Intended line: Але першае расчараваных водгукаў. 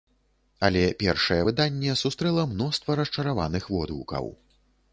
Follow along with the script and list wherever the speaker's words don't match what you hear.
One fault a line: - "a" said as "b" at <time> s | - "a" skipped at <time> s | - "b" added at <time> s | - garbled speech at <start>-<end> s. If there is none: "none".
- "выданне сустрэла мноства" added at 1.5 s